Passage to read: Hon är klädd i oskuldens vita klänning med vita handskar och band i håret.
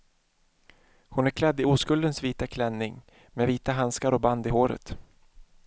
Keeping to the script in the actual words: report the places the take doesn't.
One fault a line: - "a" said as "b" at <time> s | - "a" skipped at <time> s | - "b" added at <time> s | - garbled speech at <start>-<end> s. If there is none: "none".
none